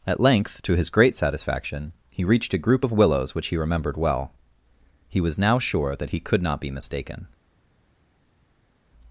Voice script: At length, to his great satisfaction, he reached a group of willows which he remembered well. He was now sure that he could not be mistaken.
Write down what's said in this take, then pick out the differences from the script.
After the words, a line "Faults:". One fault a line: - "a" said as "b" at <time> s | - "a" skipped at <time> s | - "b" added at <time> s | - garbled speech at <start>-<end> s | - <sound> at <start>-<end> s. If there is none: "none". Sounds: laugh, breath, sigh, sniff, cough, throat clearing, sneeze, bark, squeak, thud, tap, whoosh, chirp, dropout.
At length, to his great satisfaction, he reached a group of willows which he remembered well. He was now sure that he could not be mistaken.
Faults:
none